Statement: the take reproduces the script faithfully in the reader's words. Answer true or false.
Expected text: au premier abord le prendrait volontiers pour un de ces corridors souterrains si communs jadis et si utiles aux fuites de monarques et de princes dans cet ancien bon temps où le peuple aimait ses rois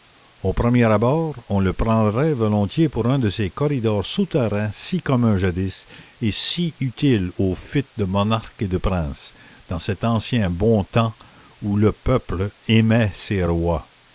false